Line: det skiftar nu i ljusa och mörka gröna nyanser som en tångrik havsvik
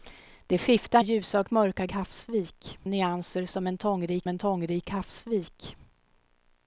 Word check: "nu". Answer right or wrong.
wrong